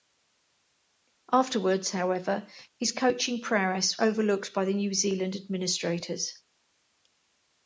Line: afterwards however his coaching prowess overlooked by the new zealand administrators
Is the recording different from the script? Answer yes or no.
no